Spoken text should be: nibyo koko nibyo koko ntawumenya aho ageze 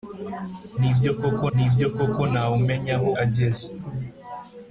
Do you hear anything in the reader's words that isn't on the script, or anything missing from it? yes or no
no